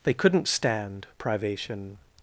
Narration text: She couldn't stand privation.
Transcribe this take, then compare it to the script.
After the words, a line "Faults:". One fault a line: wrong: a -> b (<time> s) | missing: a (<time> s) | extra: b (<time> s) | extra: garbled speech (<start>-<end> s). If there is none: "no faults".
They couldn't stand privation.
Faults:
wrong: She -> They (0.0 s)